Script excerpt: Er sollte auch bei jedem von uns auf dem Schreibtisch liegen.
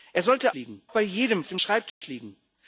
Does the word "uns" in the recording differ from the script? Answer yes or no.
yes